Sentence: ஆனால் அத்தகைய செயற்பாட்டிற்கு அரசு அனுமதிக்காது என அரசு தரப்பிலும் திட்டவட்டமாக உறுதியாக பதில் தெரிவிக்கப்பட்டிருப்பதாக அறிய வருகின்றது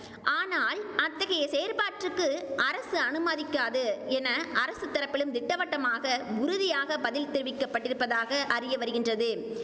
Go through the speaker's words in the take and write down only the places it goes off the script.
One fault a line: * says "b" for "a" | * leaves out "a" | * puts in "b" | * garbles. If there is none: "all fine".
all fine